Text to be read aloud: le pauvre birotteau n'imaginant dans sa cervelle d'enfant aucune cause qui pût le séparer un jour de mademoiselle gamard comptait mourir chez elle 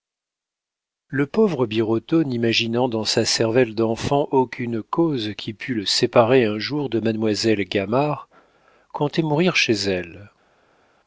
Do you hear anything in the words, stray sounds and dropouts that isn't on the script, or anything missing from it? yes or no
no